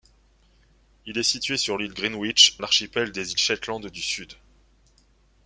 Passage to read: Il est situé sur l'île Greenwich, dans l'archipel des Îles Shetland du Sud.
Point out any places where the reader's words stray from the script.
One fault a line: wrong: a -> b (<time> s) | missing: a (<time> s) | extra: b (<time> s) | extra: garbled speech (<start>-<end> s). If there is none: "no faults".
missing: dans (2.6 s)